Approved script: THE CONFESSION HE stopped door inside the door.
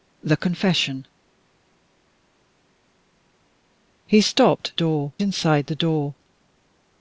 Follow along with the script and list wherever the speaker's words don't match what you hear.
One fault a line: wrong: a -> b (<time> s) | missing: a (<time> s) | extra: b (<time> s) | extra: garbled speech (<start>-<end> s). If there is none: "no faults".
no faults